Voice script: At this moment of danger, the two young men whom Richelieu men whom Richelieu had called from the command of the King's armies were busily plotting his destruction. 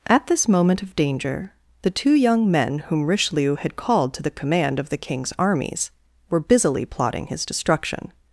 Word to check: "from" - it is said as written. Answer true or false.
false